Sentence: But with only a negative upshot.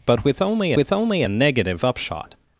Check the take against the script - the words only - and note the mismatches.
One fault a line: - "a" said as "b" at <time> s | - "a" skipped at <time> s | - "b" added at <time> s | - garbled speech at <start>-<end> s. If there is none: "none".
- "with only" added at 0.7 s